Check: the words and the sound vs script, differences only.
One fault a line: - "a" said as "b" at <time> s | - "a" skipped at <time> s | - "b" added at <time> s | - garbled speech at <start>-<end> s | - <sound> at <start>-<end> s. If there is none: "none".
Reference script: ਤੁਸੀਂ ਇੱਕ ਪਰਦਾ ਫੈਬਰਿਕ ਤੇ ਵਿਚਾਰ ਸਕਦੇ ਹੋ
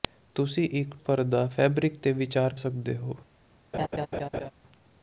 - laugh at 3.7-4.5 s